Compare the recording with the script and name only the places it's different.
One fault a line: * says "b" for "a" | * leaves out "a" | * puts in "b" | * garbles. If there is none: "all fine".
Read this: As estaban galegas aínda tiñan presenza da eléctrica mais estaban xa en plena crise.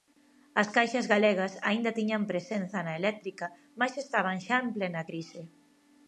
* says "caixas" for "estaban"
* says "na" for "da"